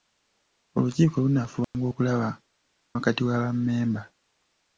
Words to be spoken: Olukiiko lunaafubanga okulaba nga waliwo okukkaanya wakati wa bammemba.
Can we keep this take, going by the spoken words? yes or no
no